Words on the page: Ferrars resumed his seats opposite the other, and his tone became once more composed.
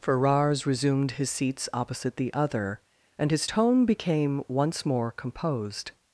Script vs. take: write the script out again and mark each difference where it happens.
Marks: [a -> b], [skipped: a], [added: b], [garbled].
Ferrars resumed his seats opposite the other, and his tone became once more composed.